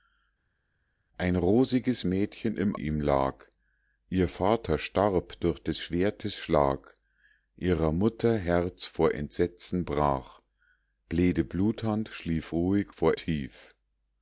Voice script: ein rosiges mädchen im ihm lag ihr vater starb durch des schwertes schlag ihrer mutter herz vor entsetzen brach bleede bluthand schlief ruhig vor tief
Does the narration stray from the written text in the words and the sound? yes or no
no